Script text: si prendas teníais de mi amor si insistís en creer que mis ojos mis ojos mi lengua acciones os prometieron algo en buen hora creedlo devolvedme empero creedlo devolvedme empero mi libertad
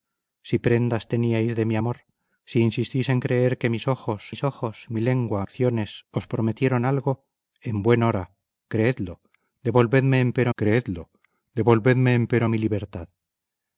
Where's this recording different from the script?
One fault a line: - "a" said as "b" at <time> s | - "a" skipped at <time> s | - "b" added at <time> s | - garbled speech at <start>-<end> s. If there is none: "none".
none